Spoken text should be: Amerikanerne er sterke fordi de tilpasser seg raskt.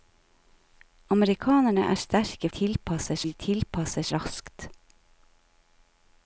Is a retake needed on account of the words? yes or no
yes